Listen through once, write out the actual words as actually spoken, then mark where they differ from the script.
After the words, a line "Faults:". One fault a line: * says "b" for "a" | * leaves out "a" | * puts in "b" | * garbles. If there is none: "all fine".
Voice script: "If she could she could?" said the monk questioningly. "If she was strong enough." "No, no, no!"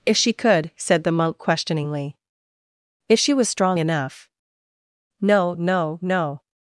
"If she could?" said the monk questioningly. "If she was strong enough." "No, no, no!"
Faults:
* leaves out "she could"